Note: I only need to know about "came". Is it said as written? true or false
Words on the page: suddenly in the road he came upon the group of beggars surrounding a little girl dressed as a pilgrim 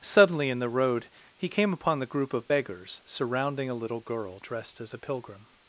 true